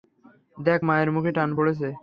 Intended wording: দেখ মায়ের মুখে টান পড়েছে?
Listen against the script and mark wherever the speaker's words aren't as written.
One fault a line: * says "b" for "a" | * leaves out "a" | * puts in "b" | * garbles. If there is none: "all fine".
all fine